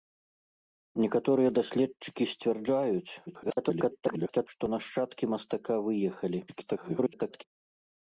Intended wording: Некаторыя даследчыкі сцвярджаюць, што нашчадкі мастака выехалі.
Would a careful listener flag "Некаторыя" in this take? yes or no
no